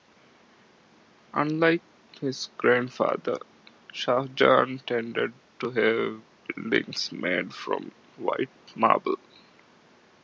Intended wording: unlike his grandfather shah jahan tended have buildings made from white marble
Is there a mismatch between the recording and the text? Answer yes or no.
yes